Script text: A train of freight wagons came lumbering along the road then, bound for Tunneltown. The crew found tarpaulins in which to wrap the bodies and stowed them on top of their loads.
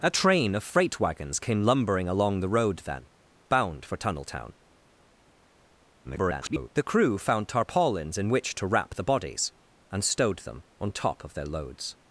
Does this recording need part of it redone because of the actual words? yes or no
yes